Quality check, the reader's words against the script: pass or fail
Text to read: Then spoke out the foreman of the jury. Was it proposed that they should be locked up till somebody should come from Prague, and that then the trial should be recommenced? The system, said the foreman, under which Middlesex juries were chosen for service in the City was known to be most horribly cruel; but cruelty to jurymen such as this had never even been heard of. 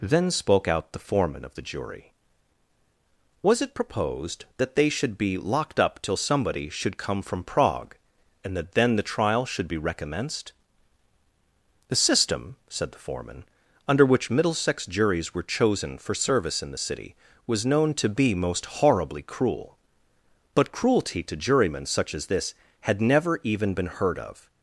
pass